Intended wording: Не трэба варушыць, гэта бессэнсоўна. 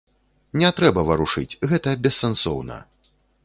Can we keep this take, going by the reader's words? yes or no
yes